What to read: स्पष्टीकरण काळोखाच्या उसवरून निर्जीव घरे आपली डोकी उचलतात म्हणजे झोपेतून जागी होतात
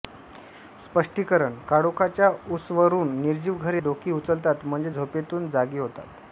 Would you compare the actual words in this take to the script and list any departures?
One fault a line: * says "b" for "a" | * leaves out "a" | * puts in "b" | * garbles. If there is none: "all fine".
* leaves out "आपली"